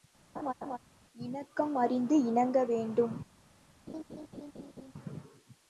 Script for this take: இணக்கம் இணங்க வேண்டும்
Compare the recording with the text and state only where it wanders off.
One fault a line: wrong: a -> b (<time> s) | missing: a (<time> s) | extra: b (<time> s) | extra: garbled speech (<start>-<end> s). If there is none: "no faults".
extra: அறிந்து (1.7 s)